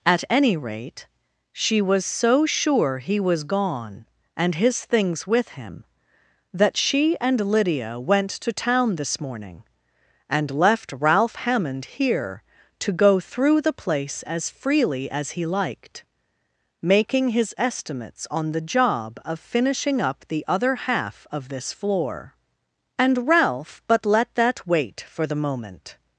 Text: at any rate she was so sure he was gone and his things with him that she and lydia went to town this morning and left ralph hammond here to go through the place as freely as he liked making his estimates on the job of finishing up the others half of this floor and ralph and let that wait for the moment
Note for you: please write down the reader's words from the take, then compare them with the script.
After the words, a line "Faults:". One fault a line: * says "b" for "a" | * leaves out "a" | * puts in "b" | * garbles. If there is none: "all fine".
at any rate she was so sure he was gone and his things with him that she and lydia went to town this morning and left ralph hammond here to go through the place as freely as he liked making his estimates on the job of finishing up the other half of this floor and ralph but let that wait for the moment
Faults:
* says "other" for "others"
* says "but" for "and"